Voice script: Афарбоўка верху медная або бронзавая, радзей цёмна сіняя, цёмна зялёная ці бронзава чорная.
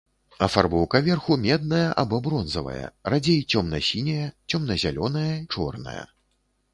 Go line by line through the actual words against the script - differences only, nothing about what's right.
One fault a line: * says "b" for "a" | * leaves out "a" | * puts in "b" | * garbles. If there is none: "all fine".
* leaves out "ці бронзава"